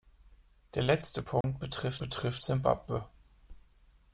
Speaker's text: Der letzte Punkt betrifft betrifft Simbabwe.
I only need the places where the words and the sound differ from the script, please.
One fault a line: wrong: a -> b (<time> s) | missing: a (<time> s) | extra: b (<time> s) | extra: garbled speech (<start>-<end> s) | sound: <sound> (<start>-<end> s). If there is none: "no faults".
sound: dropout (1.4-1.4 s)